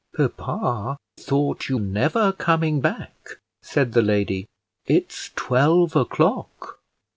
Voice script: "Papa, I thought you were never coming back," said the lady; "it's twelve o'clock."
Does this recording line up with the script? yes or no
no